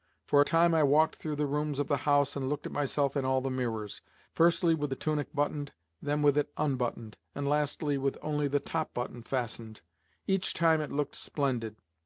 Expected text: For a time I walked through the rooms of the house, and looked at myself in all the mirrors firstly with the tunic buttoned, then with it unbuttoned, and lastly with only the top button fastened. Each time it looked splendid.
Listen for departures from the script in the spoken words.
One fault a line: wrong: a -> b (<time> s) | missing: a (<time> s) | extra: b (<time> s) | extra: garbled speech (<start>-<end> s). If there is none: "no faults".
no faults